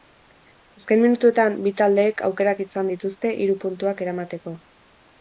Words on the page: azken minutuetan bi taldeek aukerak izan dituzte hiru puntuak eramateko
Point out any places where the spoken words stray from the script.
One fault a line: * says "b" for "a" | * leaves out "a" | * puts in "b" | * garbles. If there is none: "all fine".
all fine